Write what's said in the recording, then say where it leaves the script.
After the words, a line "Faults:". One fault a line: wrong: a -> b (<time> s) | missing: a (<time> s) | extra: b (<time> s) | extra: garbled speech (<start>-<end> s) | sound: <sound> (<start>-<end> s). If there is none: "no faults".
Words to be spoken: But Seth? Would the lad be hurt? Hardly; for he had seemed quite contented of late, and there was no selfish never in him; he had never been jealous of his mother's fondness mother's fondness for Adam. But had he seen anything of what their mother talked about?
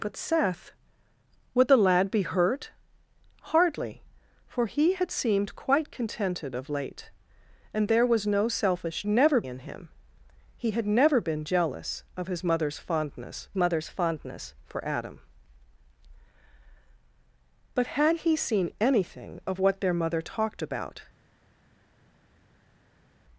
But Seth? Would the lad be hurt? Hardly; for he had seemed quite contented of late, and there was no selfish never in him; he had never been jealous of his mother's fondness mother's fondness for Adam. But had he seen anything of what their mother talked about?
Faults:
no faults